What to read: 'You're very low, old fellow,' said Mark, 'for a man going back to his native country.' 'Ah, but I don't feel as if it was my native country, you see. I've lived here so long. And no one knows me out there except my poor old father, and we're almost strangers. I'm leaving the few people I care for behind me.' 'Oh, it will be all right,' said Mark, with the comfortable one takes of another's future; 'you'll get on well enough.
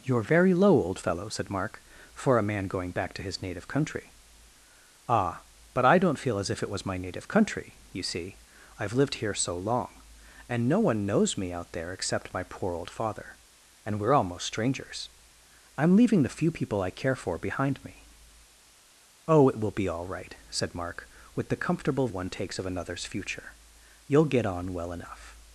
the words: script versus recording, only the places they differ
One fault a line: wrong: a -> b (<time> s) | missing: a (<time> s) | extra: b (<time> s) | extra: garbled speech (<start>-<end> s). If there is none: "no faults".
no faults